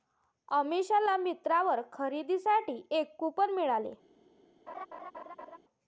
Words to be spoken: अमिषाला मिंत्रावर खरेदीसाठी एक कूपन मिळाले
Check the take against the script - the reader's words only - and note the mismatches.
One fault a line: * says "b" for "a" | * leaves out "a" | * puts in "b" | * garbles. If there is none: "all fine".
all fine